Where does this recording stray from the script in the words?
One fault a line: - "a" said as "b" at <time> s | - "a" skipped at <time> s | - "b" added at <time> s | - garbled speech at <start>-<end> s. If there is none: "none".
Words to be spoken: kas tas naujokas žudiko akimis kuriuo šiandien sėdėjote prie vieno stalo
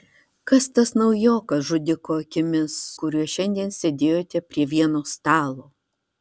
none